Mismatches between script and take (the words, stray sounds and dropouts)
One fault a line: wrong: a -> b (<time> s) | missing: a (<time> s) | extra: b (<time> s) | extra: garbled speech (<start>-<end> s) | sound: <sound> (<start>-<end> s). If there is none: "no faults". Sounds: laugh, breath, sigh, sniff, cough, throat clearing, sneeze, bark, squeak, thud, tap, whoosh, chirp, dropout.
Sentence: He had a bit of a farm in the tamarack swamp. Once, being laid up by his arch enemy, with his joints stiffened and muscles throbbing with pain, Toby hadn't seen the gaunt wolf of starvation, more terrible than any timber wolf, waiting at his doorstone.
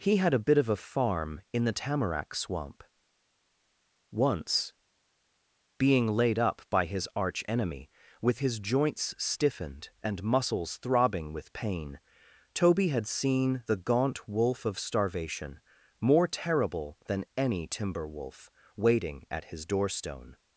wrong: hadn't -> had (12.9 s)